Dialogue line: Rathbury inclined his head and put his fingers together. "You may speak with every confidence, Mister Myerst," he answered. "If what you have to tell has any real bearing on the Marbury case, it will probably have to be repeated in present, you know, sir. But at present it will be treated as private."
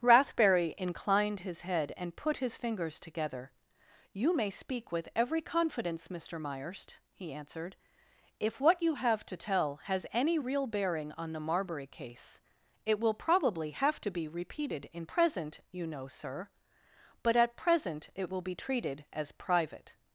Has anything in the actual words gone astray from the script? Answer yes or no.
no